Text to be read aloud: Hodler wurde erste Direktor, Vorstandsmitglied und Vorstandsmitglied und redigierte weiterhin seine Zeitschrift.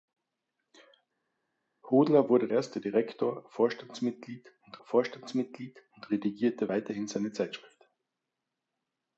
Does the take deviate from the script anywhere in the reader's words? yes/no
no